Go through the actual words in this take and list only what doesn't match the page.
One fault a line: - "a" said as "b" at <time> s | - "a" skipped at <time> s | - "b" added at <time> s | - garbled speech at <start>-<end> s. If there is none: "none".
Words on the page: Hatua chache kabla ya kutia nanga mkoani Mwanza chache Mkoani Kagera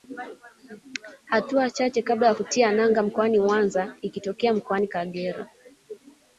- "chache" said as "ikitokea" at 4.0 s